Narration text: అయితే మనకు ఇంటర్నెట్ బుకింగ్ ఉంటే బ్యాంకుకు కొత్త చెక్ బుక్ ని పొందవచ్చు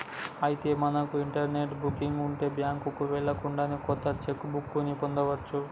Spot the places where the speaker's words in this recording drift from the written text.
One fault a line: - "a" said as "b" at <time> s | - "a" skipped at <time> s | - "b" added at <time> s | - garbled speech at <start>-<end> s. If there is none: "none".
- "వెళ్ళకుండానే" added at 3.1 s